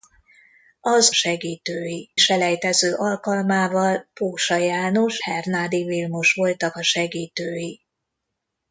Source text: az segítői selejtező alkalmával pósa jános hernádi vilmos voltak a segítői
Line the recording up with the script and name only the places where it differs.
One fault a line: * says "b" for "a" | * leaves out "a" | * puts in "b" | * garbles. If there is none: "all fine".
all fine